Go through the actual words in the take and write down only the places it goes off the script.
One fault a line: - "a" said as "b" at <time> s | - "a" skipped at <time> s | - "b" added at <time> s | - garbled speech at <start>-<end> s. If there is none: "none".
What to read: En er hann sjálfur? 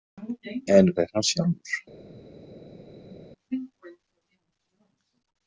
none